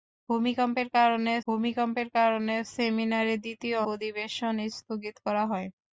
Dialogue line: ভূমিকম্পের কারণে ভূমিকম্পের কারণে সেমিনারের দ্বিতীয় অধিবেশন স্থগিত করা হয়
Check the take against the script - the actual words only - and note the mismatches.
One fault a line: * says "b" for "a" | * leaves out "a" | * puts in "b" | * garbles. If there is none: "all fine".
all fine